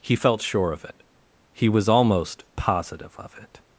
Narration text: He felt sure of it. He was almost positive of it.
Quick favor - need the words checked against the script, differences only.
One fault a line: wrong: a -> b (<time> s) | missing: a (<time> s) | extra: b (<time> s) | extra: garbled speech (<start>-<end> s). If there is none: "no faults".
no faults